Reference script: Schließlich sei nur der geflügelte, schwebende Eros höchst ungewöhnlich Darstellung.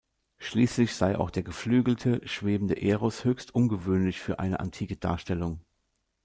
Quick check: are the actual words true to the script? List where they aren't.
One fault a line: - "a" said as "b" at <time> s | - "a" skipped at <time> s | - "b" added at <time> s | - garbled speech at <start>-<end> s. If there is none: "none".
- "nur" said as "auch" at 1.1 s
- "für eine antike" added at 4.2 s